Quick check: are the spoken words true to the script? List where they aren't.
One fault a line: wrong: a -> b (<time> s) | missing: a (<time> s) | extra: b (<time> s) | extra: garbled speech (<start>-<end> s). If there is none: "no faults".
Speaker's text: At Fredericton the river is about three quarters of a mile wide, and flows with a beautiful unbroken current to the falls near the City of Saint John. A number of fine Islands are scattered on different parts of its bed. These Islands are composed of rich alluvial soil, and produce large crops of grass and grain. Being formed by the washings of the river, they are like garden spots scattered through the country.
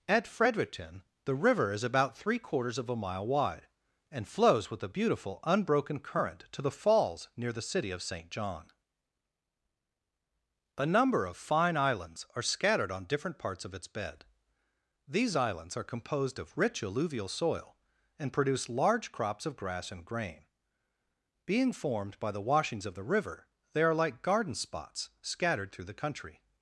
no faults